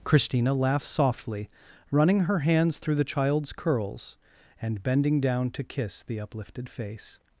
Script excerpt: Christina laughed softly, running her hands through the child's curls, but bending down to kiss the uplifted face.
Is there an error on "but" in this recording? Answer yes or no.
yes